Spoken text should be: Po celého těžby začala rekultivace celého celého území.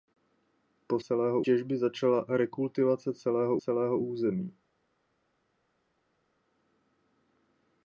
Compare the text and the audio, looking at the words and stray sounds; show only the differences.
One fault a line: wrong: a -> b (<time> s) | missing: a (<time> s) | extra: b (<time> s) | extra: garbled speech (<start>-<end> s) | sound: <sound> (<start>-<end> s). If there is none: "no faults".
no faults